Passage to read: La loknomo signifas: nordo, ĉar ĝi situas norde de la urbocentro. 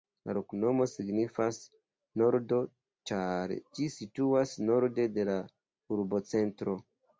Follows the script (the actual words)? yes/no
yes